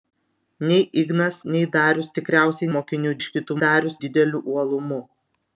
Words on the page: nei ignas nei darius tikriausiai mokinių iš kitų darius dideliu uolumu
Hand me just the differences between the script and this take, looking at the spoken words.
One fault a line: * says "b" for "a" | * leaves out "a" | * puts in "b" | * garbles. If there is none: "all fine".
all fine